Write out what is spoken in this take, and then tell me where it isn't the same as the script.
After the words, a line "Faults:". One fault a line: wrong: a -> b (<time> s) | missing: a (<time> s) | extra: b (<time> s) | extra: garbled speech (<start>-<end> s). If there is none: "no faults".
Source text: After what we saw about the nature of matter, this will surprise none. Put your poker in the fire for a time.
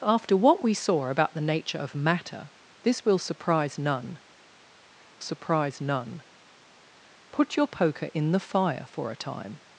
After what we saw about the nature of matter, this will surprise none surprise none. Put your poker in the fire for a time.
Faults:
extra: surprise none (5.2 s)